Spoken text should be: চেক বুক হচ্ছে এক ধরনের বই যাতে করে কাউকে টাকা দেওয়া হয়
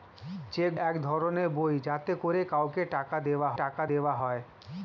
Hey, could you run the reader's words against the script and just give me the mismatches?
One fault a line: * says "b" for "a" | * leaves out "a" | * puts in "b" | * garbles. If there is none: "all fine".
* leaves out "বুক হচ্ছে"
* puts in "টাকা দেওয়া"